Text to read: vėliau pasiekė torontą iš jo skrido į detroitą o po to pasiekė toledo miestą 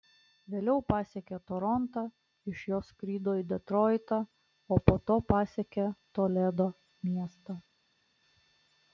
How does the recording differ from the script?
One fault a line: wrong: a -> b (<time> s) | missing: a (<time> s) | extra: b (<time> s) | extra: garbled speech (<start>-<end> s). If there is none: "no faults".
no faults